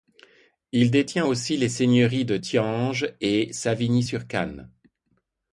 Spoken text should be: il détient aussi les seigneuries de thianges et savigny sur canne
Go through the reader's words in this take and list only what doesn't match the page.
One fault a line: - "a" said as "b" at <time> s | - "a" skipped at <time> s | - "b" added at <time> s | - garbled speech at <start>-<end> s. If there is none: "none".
none